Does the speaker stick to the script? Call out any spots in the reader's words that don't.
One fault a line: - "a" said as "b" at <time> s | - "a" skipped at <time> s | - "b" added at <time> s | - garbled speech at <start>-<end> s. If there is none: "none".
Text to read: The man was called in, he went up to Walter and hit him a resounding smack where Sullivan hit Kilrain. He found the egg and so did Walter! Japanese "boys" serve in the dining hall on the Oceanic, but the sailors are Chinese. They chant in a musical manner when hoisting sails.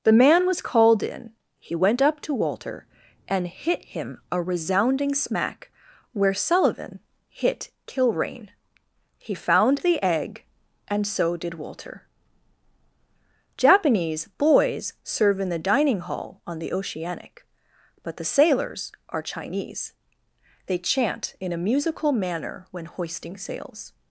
none